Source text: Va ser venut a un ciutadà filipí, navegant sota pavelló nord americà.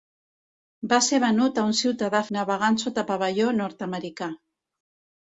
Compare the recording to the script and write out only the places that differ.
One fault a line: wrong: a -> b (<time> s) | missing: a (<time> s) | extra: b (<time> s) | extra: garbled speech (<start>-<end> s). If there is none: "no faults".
missing: filipí (2.2 s)